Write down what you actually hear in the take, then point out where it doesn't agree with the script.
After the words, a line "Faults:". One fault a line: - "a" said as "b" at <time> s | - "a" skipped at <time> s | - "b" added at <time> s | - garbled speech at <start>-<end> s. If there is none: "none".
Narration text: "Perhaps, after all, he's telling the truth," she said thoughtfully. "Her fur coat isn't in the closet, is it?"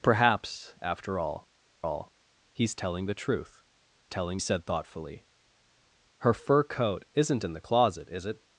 "Perhaps, after all all, he's telling the truth," telling said thoughtfully. "Her fur coat isn't in the closet, is it?"
Faults:
- "all" added at 1.8 s
- "she" said as "telling" at 4.1 s